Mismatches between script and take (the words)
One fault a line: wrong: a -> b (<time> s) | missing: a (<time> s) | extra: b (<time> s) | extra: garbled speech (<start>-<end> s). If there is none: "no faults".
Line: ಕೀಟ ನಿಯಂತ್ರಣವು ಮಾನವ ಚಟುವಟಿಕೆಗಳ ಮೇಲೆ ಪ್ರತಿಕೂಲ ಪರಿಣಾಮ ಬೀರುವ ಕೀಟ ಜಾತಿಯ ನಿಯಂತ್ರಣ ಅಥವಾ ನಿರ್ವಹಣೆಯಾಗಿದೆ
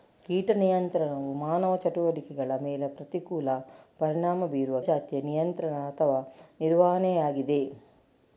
missing: ಕೀಟ (4.8 s)